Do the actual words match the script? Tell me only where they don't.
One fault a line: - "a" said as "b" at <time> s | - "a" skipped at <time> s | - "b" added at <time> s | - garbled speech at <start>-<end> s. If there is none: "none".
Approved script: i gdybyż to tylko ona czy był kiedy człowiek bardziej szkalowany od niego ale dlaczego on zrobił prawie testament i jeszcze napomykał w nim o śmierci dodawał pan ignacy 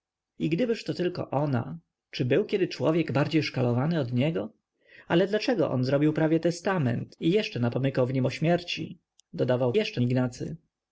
- "pan" said as "jeszcze" at 9.7 s